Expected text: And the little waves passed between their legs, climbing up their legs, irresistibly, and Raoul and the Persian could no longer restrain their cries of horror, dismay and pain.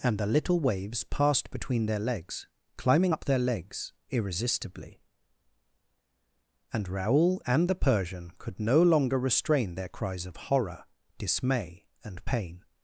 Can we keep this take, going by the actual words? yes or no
yes